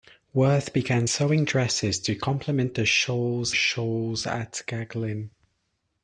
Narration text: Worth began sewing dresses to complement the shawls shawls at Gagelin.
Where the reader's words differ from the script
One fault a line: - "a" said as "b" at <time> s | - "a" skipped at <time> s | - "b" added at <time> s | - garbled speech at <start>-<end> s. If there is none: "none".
none